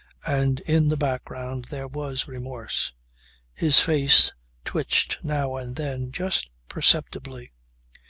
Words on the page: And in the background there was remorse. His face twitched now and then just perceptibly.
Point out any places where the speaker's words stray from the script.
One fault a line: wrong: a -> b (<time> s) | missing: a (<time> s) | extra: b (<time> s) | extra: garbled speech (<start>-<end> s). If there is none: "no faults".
no faults